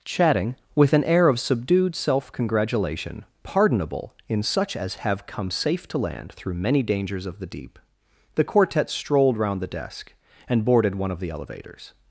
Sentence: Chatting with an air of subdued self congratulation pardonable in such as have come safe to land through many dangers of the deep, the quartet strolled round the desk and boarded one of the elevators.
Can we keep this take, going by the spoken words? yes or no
yes